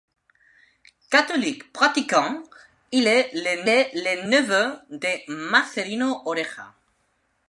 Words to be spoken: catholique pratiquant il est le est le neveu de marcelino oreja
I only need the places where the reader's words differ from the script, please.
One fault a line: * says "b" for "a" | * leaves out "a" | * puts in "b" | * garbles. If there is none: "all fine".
all fine